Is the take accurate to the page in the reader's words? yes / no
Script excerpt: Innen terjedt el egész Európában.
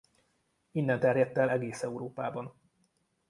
yes